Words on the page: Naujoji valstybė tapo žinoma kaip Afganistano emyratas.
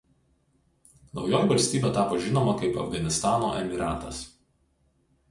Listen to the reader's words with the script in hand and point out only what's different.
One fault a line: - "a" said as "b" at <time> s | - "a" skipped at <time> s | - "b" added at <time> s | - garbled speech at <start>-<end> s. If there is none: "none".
none